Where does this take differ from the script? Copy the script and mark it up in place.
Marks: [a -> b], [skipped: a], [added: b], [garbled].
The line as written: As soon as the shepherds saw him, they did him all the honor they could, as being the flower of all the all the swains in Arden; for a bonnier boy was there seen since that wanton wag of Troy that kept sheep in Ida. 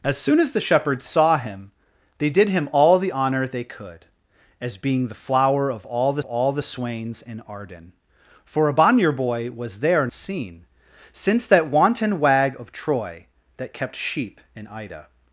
As soon as the shepherds saw him, they did him all the honor they could, as being the flower of all the all the swains in Arden; for a bonnier boy was there seen since that wanton wag of Troy that kept sheep in Ida.